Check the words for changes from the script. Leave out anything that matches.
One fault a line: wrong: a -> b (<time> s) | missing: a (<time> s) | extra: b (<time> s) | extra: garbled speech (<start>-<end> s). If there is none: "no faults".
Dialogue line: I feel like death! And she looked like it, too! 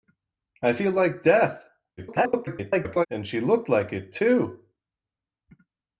extra: garbled speech (2.0-3.1 s)